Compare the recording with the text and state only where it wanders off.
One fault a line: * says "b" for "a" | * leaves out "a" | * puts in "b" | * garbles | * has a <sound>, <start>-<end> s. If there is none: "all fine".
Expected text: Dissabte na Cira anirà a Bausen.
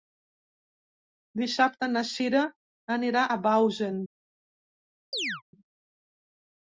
* has a chirp, 5.1-5.4 s